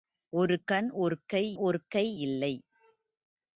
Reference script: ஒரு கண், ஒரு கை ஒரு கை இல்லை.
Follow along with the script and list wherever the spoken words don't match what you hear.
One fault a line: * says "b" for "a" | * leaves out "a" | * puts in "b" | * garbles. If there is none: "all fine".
all fine